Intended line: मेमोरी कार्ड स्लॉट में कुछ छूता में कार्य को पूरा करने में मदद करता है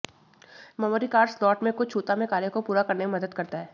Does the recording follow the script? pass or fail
pass